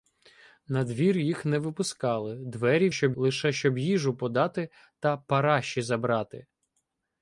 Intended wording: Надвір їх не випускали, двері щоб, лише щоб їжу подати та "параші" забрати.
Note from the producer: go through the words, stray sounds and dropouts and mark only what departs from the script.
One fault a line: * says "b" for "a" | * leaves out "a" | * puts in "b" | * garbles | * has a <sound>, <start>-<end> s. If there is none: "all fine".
all fine